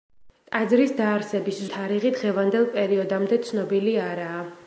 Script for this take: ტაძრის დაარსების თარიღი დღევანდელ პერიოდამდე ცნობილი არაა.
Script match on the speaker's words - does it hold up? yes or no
yes